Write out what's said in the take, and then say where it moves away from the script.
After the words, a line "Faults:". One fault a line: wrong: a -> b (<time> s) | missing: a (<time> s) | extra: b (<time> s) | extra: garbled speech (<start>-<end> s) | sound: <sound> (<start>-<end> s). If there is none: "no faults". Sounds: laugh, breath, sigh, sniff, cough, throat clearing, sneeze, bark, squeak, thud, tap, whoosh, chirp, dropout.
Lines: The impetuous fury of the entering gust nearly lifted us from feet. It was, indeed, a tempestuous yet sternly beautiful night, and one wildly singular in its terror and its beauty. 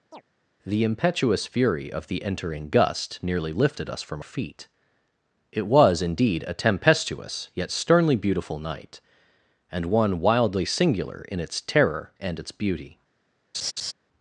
The impetuous fury of the entering gust nearly lifted us from feet. It was, indeed, a tempestuous yet sternly beautiful night, and one wildly singular in its terror and its beauty.
Faults:
sound: chirp (0.1-0.2 s)
sound: laugh (13.5-13.9 s)